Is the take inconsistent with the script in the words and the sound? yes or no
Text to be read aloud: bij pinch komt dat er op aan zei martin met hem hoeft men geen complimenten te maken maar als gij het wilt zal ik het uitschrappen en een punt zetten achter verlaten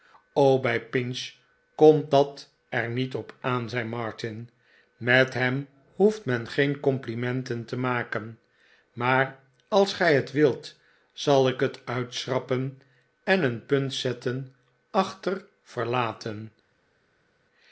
yes